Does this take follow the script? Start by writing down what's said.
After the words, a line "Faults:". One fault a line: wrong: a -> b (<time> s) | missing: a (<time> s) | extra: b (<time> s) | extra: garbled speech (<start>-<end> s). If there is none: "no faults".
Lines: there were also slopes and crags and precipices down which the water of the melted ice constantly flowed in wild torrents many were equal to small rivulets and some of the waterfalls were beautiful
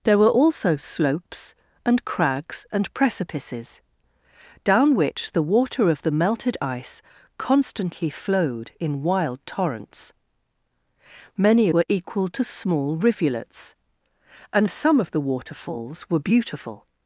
there were also slopes and crags and precipices down which the water of the melted ice constantly flowed in wild torrents many were equal to small rivulets and some of the waterfalls were beautiful
Faults:
no faults